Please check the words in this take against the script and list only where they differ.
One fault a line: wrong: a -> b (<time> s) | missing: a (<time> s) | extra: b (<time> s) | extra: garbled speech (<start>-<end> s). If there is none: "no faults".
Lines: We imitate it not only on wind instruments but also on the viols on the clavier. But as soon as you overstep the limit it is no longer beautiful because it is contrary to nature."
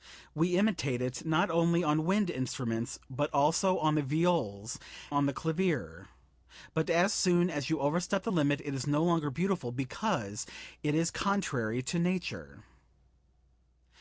no faults